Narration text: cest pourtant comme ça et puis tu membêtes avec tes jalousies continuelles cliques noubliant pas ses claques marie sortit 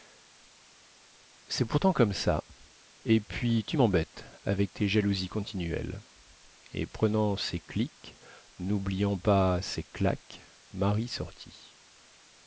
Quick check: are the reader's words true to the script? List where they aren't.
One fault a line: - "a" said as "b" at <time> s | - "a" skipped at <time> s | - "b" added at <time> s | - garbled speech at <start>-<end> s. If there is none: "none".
- "et prenant ses" added at 6.7 s